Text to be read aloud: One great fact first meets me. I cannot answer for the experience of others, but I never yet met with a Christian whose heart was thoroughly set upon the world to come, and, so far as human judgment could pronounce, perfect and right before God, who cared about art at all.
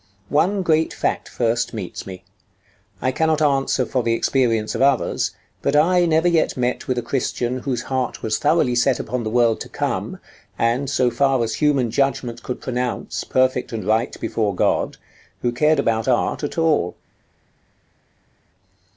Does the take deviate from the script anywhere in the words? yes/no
no